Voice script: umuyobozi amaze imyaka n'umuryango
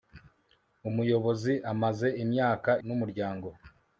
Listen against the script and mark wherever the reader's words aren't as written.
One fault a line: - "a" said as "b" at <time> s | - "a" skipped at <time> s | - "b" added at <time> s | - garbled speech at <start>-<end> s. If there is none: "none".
none